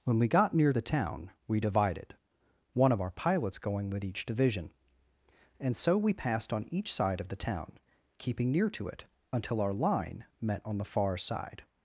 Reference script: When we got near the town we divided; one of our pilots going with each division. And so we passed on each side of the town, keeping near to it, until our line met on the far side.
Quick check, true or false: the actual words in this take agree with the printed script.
true